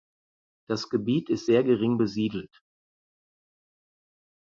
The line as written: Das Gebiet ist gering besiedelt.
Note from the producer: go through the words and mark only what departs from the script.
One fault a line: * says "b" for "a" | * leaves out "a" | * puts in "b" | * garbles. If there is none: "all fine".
* puts in "sehr"